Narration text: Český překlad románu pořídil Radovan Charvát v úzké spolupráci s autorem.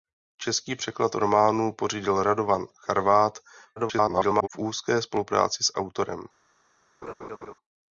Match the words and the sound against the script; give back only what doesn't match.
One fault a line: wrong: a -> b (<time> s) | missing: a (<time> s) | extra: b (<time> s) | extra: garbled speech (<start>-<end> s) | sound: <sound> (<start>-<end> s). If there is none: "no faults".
extra: garbled speech (3.8-4.5 s)
sound: laugh (7.0-7.5 s)